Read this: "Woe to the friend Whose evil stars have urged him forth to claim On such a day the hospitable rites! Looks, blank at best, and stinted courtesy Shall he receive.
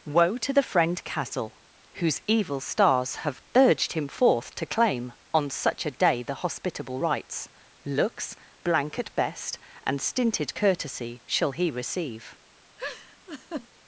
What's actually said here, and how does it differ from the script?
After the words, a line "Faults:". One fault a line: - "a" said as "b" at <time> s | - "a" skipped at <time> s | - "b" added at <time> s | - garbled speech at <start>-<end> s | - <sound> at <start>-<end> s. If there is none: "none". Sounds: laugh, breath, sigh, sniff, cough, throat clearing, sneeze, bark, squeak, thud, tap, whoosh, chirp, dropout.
"Woe to the friend castle Whose evil stars have urged him forth to claim On such a day the hospitable rites! Looks, blank at best, and stinted courtesy Shall he receive.
Faults:
- "castle" added at 1.0 s
- laugh at 12.8-13.7 s